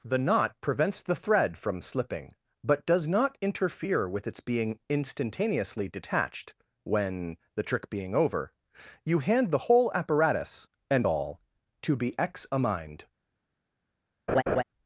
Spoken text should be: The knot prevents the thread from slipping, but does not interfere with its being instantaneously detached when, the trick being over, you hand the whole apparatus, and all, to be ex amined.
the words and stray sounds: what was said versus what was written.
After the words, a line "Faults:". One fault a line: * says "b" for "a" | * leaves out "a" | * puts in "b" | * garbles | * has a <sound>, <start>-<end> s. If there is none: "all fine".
The knot prevents the thread from slipping, but does not interfere with its being instantaneously detached when, the trick being over, you hand the whole apparatus, and all, to be ex amined.
Faults:
* has a laugh, 14.3-14.6 s